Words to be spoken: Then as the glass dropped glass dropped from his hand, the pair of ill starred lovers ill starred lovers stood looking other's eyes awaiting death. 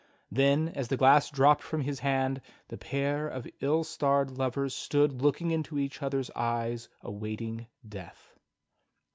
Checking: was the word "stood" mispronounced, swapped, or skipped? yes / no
yes